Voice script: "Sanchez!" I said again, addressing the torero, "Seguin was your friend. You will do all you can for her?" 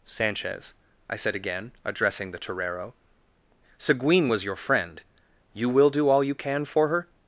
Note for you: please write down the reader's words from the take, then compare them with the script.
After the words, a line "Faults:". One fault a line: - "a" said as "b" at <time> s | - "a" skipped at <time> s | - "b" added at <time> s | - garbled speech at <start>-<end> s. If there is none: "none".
"Sanchez!" I said again, addressing the torero, "Seguin was your friend. You will do all you can for her?"
Faults:
none